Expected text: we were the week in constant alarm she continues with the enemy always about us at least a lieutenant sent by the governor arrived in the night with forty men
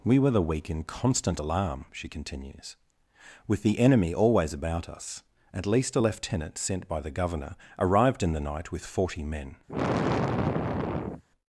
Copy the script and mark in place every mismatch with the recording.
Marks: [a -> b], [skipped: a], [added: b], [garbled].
we were the week in constant alarm she continues with the enemy always about us at least a lieutenant sent by the governor arrived in the night with forty men